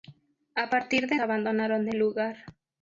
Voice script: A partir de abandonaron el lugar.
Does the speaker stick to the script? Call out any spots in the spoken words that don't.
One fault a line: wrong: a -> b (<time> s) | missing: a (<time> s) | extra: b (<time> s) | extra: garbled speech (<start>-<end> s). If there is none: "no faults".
no faults